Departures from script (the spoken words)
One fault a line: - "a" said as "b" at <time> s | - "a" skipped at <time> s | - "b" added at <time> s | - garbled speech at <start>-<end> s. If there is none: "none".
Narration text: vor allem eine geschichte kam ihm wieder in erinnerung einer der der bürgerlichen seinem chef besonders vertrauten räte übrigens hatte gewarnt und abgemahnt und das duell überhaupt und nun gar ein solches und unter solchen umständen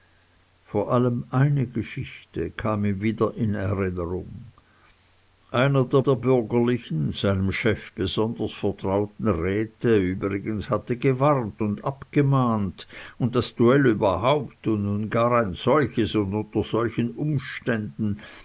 none